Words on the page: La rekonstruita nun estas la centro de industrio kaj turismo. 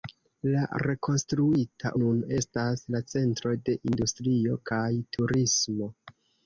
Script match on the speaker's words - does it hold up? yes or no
yes